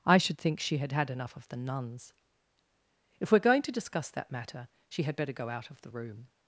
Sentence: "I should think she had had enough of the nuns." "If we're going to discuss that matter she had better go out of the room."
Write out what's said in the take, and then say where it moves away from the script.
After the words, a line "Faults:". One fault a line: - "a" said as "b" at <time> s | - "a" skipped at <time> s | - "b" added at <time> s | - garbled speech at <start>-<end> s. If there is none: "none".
"I should think she had had enough of the nuns." "If we're going to discuss that matter she had better go out of the room."
Faults:
none